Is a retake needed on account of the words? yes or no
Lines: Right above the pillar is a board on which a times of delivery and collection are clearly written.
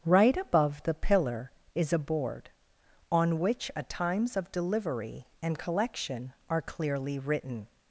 no